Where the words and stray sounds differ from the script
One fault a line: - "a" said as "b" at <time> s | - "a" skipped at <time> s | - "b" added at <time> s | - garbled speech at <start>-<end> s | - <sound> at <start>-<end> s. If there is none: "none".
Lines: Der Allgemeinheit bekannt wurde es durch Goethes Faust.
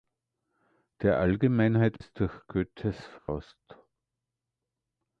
- "bekannt wurde" skipped at 2.0 s
- dropout at 3.2-3.3 s